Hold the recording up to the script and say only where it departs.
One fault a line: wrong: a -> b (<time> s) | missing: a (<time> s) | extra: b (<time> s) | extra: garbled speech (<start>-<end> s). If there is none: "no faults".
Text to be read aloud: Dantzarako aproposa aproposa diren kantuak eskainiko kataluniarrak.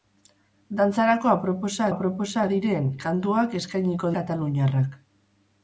no faults